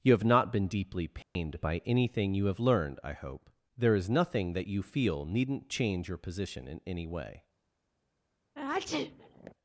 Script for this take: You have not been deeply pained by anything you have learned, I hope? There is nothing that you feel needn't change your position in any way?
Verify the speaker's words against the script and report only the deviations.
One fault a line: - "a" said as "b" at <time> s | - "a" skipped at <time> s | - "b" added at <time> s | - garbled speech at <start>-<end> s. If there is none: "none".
none